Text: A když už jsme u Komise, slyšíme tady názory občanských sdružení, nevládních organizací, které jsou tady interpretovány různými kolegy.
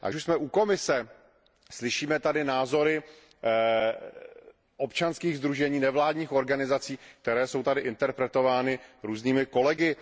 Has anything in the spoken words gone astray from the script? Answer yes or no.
yes